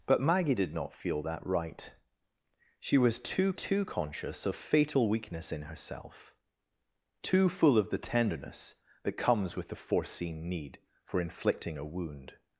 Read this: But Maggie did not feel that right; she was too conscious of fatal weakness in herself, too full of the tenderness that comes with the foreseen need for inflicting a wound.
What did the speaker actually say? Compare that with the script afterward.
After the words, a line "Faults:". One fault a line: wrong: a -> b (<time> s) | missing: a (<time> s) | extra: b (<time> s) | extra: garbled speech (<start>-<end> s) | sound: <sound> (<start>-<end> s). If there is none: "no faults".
But Maggie did not feel that right; she was too too conscious of fatal weakness in herself, too full of the tenderness that comes with the foreseen need for inflicting a wound.
Faults:
extra: too (3.5 s)